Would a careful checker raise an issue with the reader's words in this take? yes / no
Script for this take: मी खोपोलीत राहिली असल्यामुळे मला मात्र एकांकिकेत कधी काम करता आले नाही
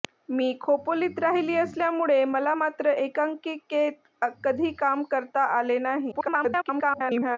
yes